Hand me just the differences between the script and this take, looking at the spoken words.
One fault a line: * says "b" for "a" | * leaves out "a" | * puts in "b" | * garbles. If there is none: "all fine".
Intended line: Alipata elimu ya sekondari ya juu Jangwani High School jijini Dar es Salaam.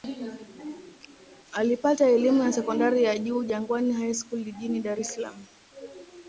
all fine